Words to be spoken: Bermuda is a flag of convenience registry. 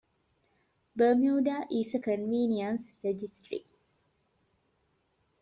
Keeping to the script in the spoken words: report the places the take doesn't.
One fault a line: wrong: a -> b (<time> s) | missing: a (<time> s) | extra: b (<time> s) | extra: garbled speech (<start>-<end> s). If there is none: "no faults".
missing: flag of (2.0 s)